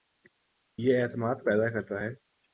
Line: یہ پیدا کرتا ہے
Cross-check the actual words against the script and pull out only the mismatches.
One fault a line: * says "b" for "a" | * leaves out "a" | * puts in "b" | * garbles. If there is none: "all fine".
* puts in "اعتماد"